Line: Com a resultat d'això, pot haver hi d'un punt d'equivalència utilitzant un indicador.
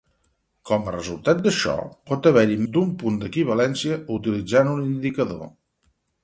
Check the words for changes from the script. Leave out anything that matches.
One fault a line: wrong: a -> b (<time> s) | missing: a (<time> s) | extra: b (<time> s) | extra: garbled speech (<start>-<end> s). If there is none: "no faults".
no faults